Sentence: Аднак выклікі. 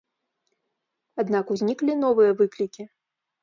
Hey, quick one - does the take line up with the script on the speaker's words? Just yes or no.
no